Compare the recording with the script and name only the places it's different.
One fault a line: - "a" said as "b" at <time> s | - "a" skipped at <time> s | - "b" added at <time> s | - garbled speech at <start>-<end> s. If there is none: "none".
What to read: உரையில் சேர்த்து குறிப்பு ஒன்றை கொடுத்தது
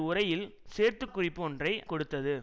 none